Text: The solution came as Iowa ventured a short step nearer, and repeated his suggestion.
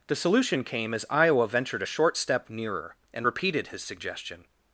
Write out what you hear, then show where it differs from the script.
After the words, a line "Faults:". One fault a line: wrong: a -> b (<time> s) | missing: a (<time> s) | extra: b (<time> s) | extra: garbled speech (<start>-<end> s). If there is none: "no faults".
The solution came as Iowa ventured a short step nearer, and repeated his suggestion.
Faults:
no faults